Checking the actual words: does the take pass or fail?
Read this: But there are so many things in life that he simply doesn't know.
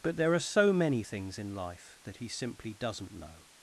pass